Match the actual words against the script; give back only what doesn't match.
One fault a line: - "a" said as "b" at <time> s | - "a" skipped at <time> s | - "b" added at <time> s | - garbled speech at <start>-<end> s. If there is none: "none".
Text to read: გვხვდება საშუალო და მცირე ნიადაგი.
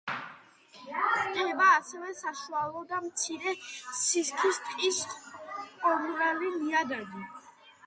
- "ასევე" added at 1.7 s
- "სისქის ტყის ყომრალი" added at 4.0 s